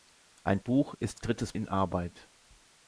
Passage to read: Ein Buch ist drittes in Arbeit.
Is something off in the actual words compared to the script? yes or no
no